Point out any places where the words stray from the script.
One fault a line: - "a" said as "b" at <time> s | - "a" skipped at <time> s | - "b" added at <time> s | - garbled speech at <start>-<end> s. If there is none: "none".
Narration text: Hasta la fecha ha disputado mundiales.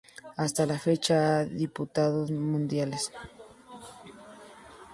none